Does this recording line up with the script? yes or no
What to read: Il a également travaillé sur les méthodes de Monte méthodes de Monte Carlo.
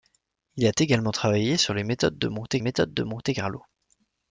yes